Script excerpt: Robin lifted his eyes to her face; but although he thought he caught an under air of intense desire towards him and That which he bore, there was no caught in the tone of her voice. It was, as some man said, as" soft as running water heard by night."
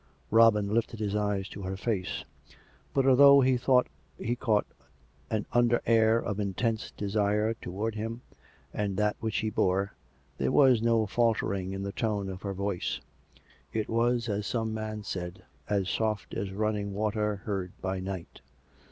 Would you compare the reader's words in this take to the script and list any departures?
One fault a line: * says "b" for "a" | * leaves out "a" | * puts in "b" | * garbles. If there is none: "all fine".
* says "faltering" for "caught"